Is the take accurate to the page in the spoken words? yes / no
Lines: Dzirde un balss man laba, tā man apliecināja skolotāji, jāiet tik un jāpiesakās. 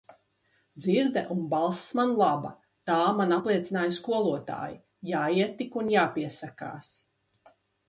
yes